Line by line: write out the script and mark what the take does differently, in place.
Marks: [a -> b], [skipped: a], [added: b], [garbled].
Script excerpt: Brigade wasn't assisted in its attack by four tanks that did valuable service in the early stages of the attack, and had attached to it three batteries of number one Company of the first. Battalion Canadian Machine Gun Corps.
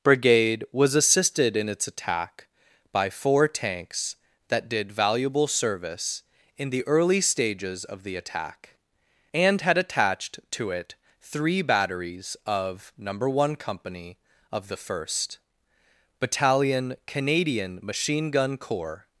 Brigade [wasn't -> was] assisted in its attack by four tanks that did valuable service in the early stages of the attack, and had attached to it three batteries of number one Company of the first. Battalion Canadian Machine Gun Corps.